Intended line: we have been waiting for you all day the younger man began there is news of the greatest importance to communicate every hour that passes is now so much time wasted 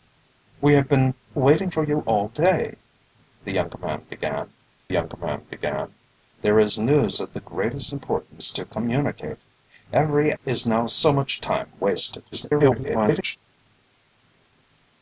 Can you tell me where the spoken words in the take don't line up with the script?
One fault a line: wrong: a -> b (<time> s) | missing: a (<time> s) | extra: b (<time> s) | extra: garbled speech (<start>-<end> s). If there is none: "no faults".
extra: younger man began (4.9 s)
missing: hour that passes (10.3 s)
extra: garbled speech (12.3-13.4 s)